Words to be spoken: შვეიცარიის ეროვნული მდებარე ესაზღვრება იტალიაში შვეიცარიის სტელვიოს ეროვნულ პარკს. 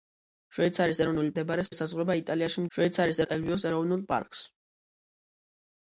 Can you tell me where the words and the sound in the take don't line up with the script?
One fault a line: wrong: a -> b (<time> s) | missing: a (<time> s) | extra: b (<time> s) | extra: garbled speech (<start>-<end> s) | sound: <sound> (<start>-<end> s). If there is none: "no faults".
no faults